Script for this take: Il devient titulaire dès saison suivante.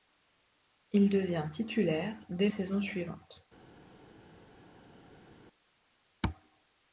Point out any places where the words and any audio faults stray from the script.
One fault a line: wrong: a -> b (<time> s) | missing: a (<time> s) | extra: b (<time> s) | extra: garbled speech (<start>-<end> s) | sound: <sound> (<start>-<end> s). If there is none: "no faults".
no faults